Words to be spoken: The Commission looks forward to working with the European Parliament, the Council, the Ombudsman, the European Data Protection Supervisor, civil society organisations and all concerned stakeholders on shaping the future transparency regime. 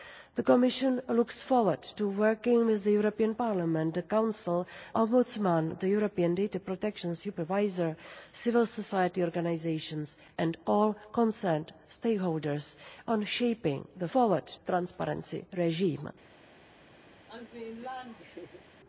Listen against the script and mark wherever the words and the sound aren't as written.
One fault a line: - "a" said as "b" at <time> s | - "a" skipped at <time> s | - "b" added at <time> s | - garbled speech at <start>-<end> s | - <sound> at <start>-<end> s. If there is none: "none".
- "the" skipped at 4.7 s
- "future" said as "forward" at 14.1 s
- laugh at 17.3-18.6 s